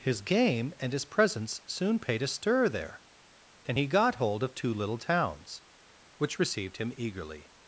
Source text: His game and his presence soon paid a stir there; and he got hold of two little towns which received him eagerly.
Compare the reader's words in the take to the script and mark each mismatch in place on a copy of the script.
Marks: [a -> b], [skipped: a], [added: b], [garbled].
His game and his presence soon paid a stir there; and he got hold of two little towns which received him eagerly.